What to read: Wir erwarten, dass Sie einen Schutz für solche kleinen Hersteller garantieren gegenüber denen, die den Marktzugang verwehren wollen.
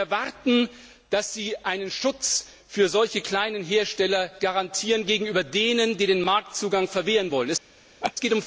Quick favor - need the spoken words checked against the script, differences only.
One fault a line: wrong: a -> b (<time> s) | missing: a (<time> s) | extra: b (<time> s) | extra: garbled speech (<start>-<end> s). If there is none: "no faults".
no faults